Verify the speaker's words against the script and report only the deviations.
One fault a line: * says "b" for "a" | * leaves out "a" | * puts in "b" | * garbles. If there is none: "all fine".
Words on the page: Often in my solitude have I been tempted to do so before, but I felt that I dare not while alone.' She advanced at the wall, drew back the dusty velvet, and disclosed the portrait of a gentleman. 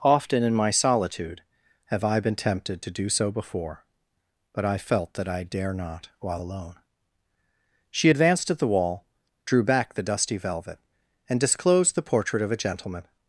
all fine